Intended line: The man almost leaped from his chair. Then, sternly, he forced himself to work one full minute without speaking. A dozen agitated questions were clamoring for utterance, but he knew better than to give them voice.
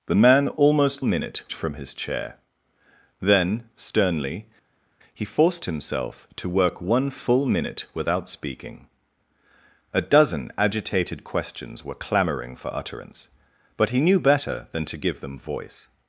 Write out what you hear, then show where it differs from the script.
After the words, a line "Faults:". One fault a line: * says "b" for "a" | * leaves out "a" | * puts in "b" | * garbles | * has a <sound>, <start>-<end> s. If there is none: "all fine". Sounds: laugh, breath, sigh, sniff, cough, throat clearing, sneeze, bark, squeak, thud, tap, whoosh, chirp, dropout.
The man almost minute from his chair. Then, sternly, he forced himself to work one full minute without speaking. A dozen agitated questions were clamoring for utterance, but he knew better than to give them voice.
Faults:
* says "minute" for "leaped"